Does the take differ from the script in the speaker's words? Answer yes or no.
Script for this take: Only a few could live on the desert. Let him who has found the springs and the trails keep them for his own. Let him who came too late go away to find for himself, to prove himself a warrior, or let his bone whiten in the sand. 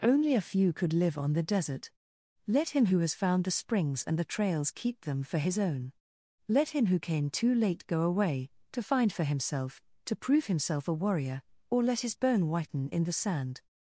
no